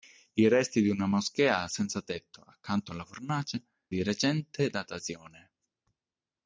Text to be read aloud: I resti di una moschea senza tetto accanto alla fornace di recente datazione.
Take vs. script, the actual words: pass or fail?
pass